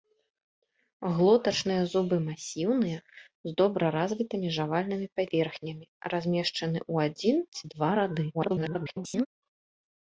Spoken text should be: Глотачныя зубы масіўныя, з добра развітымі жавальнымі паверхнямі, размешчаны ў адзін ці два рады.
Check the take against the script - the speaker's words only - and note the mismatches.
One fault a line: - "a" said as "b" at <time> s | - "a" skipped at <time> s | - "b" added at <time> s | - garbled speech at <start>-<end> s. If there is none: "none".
- garbled speech at 8.3-9.3 s